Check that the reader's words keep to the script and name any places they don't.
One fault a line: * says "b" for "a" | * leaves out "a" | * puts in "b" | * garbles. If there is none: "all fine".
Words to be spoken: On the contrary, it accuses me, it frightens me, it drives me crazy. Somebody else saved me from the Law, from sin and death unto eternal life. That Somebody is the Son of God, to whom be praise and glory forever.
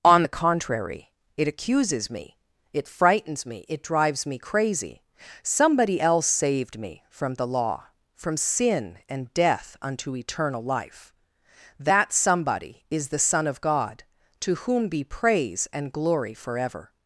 all fine